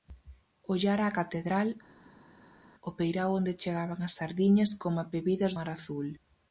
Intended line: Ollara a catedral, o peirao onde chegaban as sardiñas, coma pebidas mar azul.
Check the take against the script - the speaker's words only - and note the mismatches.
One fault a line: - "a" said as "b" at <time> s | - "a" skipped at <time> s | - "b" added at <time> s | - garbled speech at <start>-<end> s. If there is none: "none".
none